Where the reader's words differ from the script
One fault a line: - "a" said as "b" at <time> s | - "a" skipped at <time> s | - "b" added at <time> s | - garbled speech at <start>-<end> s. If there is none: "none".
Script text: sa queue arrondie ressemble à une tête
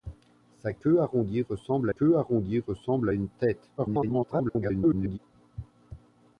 - "queue arrondie ressemble" added at 1.9 s
- garbled speech at 3.8-5.2 s